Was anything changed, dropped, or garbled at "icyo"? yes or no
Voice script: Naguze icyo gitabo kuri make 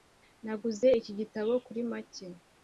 yes